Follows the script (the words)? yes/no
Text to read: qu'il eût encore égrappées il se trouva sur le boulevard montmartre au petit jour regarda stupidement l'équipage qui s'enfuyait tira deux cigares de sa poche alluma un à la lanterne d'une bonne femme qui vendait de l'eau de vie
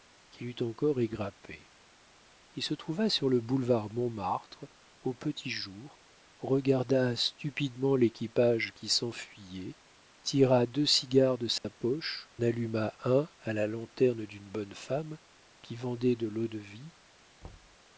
yes